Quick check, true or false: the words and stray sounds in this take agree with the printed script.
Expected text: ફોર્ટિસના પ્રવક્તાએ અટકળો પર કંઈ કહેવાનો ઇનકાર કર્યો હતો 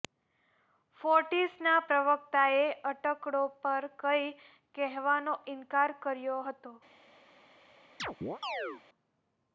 false